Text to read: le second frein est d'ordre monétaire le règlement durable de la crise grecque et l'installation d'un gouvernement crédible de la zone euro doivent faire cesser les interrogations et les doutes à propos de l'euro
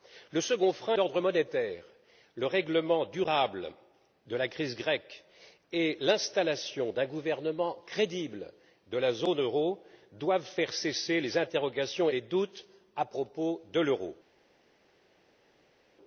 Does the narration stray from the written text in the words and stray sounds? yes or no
yes